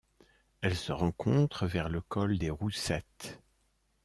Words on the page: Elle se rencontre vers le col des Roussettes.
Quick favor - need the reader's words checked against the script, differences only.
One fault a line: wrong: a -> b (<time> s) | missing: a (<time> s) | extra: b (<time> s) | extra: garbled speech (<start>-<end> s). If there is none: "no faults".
no faults